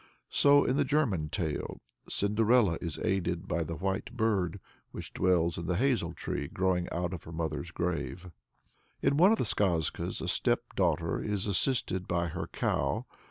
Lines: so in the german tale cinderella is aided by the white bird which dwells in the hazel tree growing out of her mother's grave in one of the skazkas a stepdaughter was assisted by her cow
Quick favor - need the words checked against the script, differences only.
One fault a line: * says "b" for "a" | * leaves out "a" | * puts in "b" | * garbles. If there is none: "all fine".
* says "is" for "was"